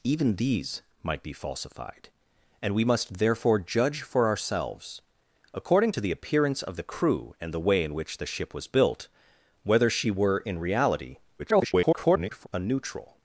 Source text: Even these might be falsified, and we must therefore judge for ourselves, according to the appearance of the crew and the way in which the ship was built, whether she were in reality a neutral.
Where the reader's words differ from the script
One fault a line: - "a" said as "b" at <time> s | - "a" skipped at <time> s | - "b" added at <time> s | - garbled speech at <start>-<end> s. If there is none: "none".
- garbled speech at 11.4-12.5 s